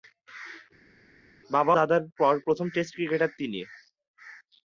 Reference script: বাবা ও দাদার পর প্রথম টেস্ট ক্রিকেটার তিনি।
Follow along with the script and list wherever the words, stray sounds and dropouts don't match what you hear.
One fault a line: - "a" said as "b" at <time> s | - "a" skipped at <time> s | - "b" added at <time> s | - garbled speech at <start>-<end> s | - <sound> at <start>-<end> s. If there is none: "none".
- "ও" skipped at 1.8 s